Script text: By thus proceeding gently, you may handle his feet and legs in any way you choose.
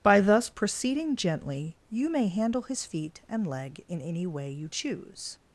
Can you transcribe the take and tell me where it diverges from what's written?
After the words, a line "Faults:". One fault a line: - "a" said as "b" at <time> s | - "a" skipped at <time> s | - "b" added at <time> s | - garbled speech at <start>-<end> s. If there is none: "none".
By thus proceeding gently, you may handle his feet and leg in any way you choose.
Faults:
- "legs" said as "leg" at 3.4 s